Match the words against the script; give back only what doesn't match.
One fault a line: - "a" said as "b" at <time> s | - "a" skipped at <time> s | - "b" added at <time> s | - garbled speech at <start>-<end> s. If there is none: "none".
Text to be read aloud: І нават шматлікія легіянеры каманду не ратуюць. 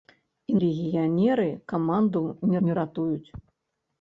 - "нават шматлікія" skipped at 0.5 s
- "не" added at 2.7 s